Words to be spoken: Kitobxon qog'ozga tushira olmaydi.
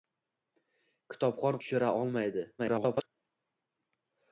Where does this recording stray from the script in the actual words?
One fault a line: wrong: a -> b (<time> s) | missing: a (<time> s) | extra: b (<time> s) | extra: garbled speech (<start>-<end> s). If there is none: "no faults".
missing: qog'ozga (1.6 s)
extra: garbled speech (2.6-3.1 s)